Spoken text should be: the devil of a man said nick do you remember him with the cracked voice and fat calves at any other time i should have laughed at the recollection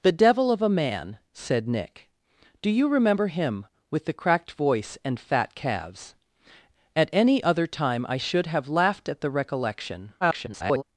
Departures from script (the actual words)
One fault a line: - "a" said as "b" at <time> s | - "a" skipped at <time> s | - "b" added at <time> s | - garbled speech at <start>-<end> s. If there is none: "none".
- garbled speech at 10.2-10.8 s